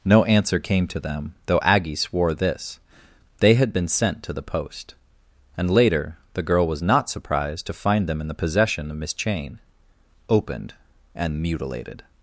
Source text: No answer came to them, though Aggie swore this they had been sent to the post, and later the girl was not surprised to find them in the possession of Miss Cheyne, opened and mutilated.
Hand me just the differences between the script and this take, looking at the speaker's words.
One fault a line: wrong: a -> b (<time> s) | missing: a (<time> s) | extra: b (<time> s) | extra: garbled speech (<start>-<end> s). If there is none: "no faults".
no faults